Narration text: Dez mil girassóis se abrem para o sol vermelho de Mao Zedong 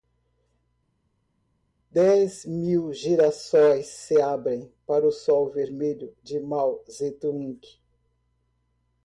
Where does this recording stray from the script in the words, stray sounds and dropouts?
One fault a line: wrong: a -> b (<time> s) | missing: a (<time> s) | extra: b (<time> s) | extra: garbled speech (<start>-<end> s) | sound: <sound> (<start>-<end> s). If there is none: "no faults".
no faults